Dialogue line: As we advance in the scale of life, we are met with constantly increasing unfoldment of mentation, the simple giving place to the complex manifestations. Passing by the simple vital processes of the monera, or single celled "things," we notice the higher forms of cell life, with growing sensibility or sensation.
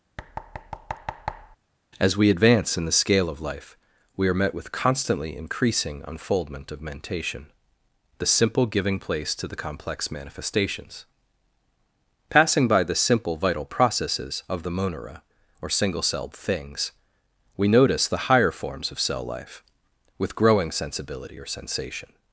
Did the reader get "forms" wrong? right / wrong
right